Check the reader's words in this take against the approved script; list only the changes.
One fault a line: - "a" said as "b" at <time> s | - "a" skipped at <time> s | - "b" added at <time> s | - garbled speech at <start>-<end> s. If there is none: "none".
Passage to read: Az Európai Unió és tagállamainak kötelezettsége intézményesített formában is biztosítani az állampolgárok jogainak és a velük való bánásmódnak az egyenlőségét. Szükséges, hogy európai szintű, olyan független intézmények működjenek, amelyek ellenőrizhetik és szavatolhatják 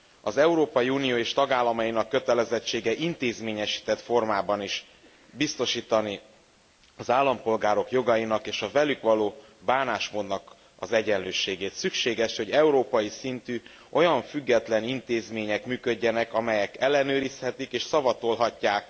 none